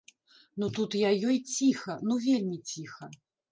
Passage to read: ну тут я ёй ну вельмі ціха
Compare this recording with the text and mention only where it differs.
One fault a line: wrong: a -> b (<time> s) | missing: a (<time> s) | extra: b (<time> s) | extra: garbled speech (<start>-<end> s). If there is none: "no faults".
extra: ціха (1.5 s)